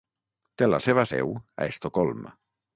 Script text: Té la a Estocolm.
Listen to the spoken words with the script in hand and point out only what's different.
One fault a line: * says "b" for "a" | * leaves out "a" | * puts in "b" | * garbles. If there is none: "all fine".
* puts in "seva seu"